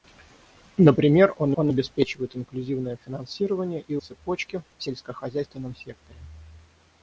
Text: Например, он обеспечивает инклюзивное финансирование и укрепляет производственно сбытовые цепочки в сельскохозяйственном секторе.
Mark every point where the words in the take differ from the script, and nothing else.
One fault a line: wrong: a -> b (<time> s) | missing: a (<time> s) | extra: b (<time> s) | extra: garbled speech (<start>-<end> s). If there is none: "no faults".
extra: он (1.5 s)
missing: укрепляет производственно сбытовые (4.0 s)